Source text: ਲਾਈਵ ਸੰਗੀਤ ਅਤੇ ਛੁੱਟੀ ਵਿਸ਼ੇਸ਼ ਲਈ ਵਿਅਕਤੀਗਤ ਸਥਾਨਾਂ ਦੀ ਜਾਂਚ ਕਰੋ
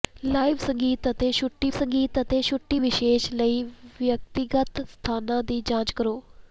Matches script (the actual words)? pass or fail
fail